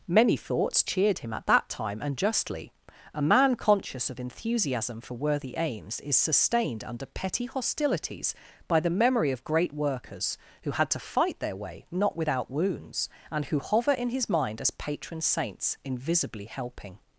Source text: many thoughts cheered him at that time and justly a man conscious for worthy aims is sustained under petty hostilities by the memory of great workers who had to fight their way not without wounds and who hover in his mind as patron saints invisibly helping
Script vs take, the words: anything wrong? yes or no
yes